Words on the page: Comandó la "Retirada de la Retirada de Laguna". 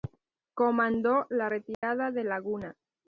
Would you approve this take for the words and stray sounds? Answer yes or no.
no